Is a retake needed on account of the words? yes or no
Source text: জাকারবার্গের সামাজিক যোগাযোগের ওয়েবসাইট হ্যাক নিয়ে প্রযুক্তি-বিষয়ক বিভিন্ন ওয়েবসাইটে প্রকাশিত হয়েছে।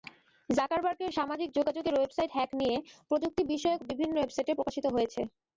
no